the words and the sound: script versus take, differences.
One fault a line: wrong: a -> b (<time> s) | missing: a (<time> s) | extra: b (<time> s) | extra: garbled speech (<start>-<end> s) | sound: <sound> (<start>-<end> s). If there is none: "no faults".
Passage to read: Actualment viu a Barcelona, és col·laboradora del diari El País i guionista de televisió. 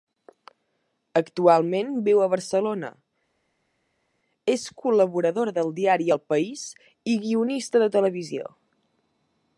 no faults